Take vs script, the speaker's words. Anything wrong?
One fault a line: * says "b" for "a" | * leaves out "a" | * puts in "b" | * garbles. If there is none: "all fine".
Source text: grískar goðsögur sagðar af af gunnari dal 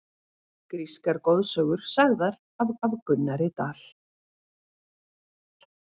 all fine